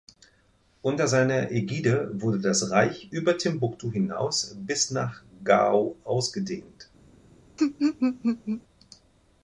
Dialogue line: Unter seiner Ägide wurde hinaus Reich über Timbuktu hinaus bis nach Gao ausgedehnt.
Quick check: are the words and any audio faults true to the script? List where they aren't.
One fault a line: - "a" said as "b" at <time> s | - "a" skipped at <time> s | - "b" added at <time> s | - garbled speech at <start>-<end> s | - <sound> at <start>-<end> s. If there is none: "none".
- "hinaus" said as "das" at 2.4 s
- laugh at 7.6-8.6 s